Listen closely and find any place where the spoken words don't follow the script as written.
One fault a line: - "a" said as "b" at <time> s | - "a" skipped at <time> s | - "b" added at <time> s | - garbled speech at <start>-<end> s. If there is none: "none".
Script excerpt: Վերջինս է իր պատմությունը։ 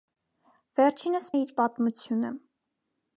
none